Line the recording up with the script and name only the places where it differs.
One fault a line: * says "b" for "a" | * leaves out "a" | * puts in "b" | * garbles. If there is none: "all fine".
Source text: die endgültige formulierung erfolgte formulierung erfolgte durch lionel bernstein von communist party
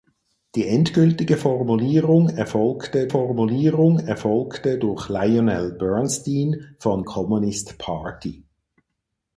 all fine